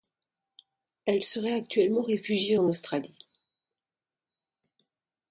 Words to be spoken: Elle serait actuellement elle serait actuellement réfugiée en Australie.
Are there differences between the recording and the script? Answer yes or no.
yes